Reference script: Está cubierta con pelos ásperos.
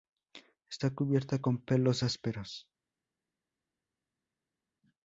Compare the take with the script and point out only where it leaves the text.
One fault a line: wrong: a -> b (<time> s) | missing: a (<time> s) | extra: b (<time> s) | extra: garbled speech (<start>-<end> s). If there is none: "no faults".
no faults